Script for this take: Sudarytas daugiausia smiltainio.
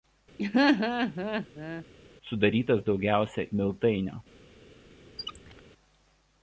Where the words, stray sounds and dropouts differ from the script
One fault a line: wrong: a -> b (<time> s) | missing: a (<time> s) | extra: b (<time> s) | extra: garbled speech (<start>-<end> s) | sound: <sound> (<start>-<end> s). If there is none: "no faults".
sound: laugh (0.4-1.8 s)
sound: squeak (5.2-5.6 s)